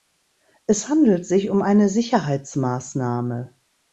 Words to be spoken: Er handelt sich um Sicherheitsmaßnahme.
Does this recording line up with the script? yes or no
no